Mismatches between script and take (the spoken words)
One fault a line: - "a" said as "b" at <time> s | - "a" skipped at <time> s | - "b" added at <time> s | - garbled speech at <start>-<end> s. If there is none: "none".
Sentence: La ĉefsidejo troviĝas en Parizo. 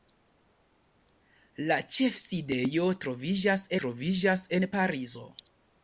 - "troviĝas" added at 3.8 s